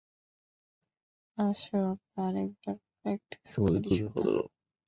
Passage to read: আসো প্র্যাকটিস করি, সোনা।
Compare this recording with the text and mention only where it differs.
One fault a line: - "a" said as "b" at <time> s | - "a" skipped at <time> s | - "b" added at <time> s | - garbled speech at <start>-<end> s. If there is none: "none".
- "আমরা আরেকবার" added at 1.9 s